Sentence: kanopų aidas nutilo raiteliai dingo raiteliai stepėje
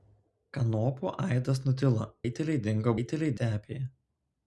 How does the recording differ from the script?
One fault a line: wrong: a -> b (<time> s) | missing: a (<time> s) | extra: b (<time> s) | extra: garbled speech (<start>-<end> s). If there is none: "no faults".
no faults